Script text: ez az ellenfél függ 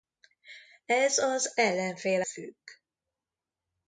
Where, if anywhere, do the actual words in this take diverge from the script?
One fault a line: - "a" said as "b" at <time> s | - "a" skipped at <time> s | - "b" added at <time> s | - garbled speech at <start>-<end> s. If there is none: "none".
none